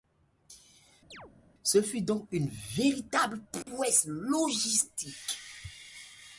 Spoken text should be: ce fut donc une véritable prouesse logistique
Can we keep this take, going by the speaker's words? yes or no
yes